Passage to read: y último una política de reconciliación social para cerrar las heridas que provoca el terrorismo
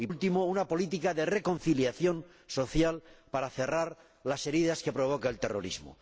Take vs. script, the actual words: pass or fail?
pass